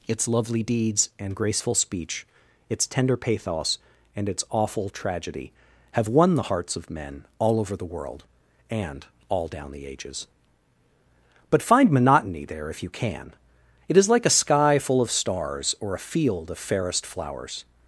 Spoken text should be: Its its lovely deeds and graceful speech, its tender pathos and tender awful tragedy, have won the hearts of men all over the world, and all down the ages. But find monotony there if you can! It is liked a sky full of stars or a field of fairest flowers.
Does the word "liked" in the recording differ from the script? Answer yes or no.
yes